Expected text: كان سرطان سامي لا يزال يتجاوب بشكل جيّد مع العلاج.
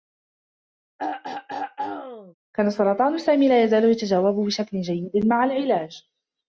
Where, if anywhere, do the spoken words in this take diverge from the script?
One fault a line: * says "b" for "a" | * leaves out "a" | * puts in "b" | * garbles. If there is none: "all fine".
all fine